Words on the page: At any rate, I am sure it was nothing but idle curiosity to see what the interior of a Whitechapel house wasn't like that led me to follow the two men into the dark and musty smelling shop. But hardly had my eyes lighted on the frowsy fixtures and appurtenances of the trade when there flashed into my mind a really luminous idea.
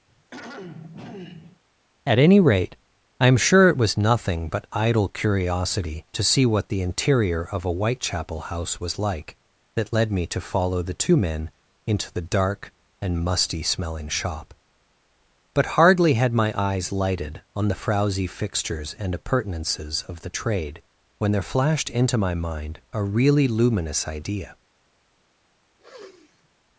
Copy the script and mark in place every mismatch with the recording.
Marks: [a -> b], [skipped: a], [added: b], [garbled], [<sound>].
[throat clearing] At any rate, I am sure it was nothing but idle curiosity to see what the interior of a Whitechapel house [wasn't -> was] like that led me to follow the two men into the dark and musty smelling shop. But hardly had my eyes lighted on the frowsy fixtures and appurtenances of the trade when there flashed into my mind a really luminous idea. [sniff]